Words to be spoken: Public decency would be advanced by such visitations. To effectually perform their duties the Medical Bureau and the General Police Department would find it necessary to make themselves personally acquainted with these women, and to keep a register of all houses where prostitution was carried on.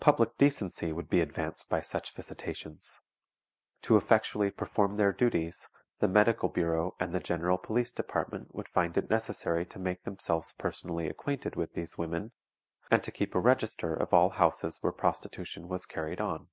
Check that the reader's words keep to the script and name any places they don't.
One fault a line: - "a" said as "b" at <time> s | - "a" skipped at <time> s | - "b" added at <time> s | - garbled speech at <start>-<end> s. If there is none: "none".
none